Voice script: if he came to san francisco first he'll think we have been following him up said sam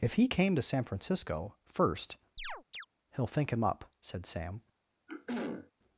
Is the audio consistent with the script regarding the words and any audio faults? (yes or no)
no